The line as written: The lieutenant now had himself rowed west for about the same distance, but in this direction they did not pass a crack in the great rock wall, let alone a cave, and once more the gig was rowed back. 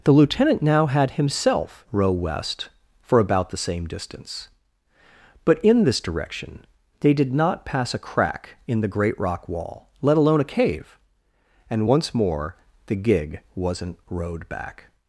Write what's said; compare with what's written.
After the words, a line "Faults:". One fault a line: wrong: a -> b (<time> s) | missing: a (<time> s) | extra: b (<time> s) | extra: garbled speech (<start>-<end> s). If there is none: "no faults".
The lieutenant now had himself row west for about the same distance, but in this direction they did not pass a crack in the great rock wall, let alone a cave, and once more the gig wasn't rowed back.
Faults:
wrong: rowed -> row (1.9 s)
wrong: was -> wasn't (13.6 s)